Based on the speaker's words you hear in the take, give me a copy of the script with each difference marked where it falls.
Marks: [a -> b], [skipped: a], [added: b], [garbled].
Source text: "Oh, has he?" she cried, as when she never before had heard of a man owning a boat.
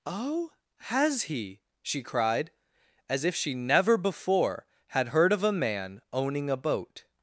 "Oh, has he?" she cried, as [when -> if] she never before had heard of a man owning a boat.